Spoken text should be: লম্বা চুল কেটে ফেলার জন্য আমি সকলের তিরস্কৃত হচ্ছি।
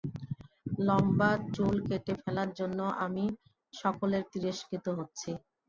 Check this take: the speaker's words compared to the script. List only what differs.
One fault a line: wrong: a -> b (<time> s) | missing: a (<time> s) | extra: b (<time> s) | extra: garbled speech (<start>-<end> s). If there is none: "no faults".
no faults